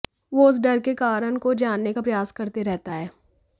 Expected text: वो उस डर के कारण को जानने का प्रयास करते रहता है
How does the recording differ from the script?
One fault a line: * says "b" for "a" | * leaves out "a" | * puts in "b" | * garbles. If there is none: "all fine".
all fine